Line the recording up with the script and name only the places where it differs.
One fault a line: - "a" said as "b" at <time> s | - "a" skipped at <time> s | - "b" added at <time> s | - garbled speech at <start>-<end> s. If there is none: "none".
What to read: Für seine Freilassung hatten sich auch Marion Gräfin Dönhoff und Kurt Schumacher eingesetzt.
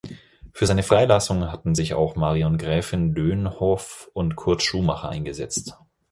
none